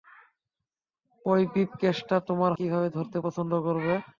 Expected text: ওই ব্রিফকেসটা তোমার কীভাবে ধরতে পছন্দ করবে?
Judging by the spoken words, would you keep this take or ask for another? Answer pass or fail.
pass